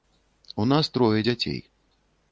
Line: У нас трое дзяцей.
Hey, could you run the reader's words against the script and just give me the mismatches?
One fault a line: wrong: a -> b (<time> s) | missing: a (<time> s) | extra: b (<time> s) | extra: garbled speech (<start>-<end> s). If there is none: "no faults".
no faults